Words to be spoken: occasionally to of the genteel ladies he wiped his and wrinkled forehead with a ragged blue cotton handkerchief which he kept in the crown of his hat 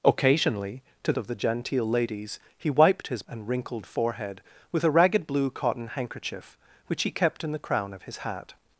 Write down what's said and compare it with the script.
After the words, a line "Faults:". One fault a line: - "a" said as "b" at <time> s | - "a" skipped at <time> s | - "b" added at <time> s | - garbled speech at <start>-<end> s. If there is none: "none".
occasionally to of the genteel ladies he wiped his and wrinkled forehead with a ragged blue cotton handkerchief which he kept in the crown of his hat
Faults:
none